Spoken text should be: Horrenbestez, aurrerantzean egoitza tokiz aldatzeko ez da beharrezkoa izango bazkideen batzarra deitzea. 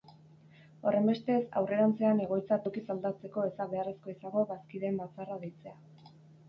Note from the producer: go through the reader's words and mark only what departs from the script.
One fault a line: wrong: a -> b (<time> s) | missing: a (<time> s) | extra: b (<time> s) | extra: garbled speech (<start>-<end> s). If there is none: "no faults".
no faults